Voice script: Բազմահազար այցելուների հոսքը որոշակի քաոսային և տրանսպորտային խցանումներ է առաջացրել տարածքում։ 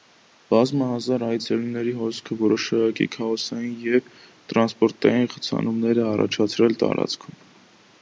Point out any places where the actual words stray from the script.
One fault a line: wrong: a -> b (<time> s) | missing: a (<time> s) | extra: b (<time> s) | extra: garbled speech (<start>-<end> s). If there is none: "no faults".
no faults